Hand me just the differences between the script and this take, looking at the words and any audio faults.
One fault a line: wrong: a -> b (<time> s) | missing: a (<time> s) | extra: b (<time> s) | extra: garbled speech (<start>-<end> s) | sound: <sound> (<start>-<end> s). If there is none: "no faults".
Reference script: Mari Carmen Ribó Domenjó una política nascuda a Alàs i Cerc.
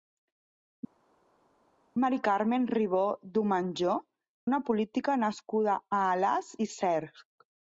no faults